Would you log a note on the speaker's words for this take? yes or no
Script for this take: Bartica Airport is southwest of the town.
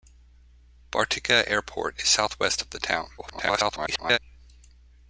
yes